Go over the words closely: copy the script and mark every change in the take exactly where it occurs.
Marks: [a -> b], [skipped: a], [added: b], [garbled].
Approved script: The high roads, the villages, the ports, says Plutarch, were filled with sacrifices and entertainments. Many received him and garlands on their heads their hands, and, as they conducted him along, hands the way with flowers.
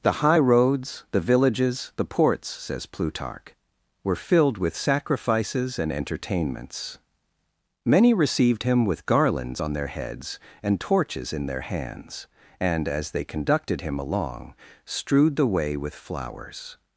The high roads, the villages, the ports, says Plutarch, were filled with sacrifices and entertainments. Many received him [and -> with] garlands on their heads [added: and torches in] their hands, and, as they conducted him along, [hands -> strewed] the way with flowers.